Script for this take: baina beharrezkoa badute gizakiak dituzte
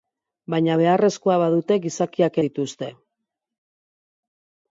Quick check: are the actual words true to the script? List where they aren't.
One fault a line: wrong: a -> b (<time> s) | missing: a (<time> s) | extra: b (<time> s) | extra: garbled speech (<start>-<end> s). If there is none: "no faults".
no faults